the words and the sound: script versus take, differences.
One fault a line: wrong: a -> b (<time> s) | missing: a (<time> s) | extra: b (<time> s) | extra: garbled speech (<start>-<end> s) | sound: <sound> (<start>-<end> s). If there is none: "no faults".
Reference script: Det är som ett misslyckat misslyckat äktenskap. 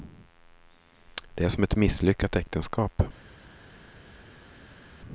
missing: misslyckat (2.4 s)